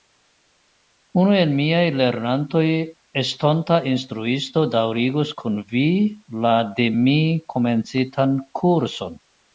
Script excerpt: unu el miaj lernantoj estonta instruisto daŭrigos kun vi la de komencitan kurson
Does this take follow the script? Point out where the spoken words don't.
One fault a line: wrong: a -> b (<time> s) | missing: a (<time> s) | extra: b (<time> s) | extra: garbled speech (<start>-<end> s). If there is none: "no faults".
extra: mi (7.0 s)